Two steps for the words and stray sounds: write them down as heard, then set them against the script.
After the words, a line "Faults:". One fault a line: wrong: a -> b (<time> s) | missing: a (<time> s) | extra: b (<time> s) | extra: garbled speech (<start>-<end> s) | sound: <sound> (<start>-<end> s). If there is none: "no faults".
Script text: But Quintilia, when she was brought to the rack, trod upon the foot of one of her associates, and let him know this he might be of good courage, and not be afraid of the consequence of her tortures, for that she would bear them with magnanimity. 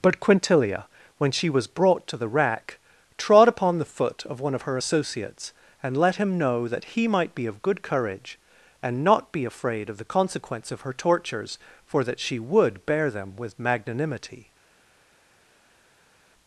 But Quintilia, when she was brought to the rack, trod upon the foot of one of her associates, and let him know that he might be of good courage, and not be afraid of the consequence of her tortures, for that she would bear them with magnanimity.
Faults:
wrong: this -> that (6.7 s)